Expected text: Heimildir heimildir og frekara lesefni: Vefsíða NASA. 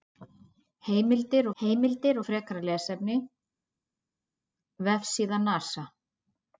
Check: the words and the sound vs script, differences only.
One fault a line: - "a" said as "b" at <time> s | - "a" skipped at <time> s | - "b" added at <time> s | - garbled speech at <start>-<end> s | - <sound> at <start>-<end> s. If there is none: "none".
none